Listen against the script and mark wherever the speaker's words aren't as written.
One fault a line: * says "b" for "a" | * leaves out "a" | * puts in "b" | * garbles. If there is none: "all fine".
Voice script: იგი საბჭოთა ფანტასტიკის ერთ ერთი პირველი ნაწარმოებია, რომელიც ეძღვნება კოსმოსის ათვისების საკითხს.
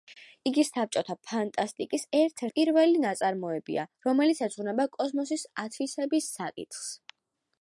* leaves out "ერთი"